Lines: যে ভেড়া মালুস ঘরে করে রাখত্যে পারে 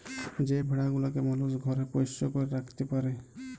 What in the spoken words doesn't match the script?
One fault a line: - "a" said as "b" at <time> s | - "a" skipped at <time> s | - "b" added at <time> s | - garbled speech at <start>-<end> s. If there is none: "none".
- "গুলাকে" added at 0.9 s
- "পোষ্য" added at 1.9 s